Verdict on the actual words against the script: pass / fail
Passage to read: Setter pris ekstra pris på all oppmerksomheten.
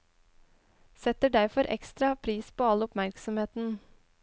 fail